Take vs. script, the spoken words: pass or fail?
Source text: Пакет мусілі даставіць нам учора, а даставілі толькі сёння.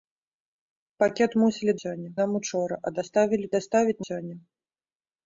fail